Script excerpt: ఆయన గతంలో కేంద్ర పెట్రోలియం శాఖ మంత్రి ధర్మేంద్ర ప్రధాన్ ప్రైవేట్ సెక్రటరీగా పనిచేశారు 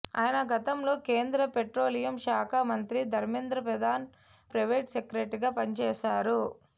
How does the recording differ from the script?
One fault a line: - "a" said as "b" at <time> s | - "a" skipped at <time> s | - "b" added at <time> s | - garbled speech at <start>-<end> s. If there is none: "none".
none